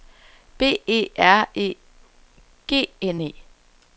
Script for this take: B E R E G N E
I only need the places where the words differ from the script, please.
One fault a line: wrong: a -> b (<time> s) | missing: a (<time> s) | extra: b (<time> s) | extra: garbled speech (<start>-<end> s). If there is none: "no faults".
no faults